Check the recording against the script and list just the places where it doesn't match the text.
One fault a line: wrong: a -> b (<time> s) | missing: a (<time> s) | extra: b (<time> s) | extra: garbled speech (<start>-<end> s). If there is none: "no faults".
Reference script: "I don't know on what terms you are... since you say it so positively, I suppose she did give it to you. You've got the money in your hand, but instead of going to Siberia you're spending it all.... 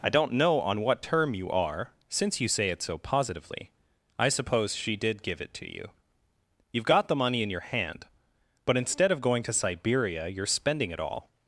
wrong: terms -> term (1.0 s)